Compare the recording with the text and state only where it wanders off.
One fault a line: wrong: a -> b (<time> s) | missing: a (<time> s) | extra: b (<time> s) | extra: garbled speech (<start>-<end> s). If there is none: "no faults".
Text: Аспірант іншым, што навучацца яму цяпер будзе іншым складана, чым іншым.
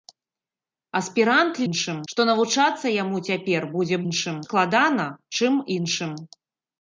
no faults